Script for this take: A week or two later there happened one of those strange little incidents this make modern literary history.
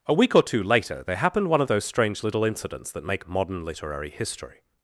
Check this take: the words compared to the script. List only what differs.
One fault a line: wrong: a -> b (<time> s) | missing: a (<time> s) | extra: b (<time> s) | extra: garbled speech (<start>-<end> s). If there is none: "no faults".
wrong: this -> that (2.9 s)